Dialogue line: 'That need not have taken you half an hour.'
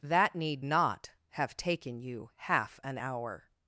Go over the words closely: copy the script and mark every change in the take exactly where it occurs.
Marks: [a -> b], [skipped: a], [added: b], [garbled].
'That need not have taken you half an hour.'